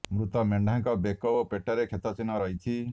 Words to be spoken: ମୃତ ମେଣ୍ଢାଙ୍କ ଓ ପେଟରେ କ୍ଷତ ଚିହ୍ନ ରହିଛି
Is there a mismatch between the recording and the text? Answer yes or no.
yes